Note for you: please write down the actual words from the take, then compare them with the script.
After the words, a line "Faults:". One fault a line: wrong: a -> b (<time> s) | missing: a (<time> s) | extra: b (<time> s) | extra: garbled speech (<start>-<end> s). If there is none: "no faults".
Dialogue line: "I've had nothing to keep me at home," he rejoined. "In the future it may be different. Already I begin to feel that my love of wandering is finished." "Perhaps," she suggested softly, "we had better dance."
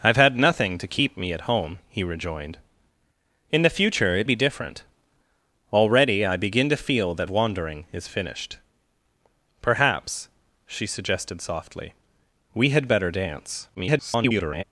"I've had nothing to keep me at home," he rejoined. "In the future it be different. Already I begin to feel that wandering is finished." "Perhaps," she suggested softly, "we had better dance." [garbled]
Faults:
missing: may (4.3 s)
missing: my love of (7.3 s)
extra: garbled speech (13.7-14.6 s)